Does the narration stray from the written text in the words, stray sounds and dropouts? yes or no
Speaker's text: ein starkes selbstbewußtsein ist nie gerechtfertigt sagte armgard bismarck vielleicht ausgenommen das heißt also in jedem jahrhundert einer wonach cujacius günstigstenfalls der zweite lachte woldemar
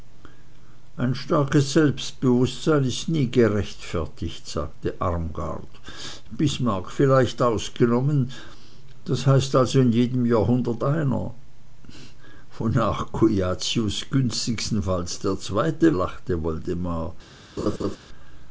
yes